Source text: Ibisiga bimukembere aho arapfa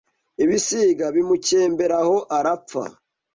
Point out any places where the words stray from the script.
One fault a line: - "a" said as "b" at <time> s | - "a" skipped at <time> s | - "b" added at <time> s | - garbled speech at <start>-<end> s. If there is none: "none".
none